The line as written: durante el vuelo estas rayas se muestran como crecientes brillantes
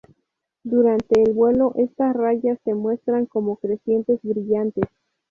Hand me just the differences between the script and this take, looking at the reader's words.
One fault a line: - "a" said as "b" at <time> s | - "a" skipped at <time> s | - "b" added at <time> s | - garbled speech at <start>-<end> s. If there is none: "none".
none